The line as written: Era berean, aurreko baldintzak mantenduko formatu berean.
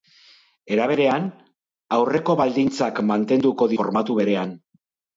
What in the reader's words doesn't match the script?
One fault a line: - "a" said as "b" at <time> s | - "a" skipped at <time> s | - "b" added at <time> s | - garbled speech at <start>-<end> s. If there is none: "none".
none